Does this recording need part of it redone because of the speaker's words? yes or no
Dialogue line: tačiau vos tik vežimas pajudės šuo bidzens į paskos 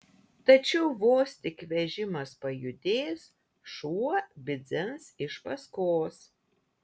yes